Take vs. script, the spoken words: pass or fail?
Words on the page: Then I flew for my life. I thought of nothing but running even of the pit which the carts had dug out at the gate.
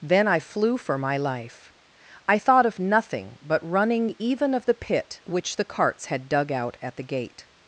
pass